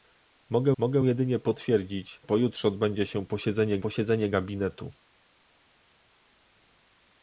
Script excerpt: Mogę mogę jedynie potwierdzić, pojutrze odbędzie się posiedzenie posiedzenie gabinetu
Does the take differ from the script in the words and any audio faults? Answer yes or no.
no